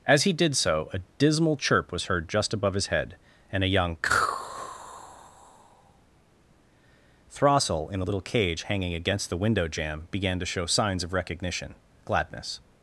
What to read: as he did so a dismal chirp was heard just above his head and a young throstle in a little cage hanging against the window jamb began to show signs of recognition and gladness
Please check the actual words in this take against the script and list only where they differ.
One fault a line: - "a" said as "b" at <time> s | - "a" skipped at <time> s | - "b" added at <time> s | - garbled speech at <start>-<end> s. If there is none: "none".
- "and" skipped at 11.7 s